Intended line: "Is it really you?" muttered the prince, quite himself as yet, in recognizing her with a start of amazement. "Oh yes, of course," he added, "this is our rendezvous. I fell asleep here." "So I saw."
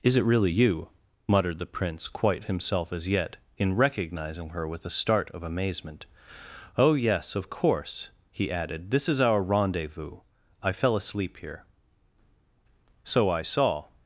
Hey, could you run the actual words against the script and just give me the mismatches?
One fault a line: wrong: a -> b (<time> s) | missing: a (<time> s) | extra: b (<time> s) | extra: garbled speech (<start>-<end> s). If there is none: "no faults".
no faults